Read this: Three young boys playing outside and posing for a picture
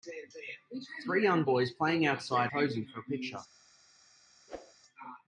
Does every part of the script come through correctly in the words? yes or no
no